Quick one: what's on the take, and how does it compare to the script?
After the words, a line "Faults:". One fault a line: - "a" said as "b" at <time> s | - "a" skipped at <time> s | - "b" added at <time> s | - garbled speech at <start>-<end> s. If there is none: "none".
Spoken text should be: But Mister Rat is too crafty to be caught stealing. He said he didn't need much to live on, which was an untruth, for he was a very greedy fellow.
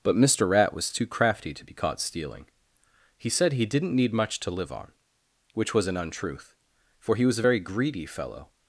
But Mister Rat was too crafty to be caught stealing. He said he didn't need much to live on, which was an untruth, for he was a very greedy fellow.
Faults:
- "is" said as "was" at 0.7 s